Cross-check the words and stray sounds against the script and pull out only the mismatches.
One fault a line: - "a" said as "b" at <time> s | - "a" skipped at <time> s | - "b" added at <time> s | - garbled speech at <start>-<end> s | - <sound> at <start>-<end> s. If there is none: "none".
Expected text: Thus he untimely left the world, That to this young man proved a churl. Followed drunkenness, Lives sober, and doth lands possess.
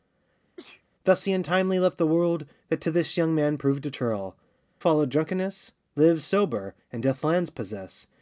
- sneeze at 0.6-0.8 s